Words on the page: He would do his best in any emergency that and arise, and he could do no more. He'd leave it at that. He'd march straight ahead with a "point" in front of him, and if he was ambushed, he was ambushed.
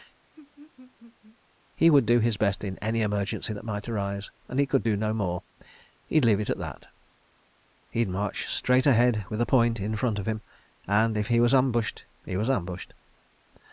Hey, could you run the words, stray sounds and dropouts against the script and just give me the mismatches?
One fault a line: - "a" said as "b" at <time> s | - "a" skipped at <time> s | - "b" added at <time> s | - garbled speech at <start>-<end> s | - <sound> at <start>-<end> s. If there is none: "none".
- laugh at 0.3-1.4 s
- "and" said as "might" at 3.6 s